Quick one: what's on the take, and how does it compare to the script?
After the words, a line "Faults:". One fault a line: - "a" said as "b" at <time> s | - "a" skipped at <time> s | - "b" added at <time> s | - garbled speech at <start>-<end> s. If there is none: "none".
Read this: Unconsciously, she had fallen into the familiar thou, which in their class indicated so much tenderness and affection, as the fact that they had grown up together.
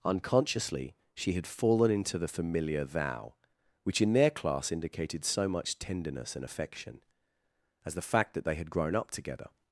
Unconsciously, she had fallen into the familiar thou, which in their class indicated so much tenderness and affection, as the fact that they had grown up together.
Faults:
none